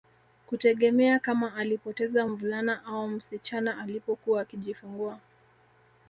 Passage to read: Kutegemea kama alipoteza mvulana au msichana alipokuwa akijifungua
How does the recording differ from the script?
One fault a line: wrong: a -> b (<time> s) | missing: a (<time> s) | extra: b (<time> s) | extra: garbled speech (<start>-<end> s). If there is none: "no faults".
no faults